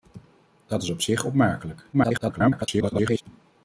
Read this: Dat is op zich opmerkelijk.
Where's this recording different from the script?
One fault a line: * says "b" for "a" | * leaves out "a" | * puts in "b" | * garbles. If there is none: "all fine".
* garbles